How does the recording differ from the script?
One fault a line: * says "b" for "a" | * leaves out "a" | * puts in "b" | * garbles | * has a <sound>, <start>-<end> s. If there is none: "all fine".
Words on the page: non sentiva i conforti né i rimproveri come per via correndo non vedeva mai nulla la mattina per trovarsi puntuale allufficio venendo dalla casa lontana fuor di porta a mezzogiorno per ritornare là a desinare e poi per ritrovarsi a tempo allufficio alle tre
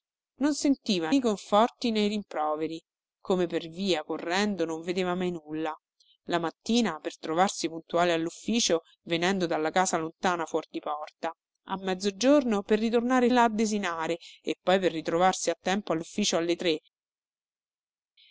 all fine